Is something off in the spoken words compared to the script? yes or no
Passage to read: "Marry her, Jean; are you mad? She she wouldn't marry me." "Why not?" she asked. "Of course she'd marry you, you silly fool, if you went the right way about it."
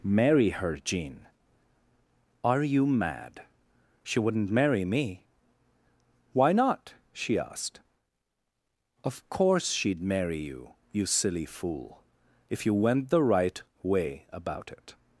yes